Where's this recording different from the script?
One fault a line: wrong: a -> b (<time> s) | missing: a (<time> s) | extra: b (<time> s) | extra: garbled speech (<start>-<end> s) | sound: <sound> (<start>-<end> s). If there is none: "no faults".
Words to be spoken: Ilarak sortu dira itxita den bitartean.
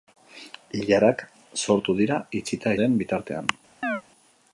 sound: chirp (3.8-4.0 s)